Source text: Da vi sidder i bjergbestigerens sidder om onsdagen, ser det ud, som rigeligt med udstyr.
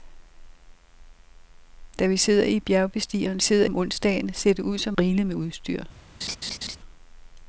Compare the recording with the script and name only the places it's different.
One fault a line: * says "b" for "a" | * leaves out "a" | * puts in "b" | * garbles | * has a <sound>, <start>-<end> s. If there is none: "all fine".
* has a laugh, 6.2-6.8 s